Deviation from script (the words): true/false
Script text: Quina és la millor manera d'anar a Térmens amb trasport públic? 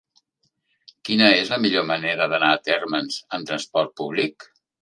false